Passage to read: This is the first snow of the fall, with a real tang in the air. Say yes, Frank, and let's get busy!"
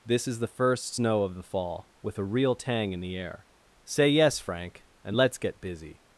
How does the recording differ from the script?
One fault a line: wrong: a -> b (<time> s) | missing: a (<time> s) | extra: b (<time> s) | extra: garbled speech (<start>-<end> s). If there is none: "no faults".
no faults